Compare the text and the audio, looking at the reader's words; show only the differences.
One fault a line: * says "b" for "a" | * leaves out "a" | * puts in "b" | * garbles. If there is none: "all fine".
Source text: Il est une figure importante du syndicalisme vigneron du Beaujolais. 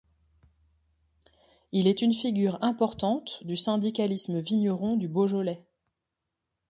all fine